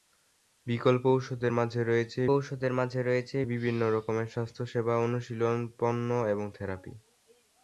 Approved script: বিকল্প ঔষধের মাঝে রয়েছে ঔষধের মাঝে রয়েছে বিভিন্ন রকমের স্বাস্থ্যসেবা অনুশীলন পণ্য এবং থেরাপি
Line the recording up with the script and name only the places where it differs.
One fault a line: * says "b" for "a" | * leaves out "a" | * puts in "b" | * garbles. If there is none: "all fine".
all fine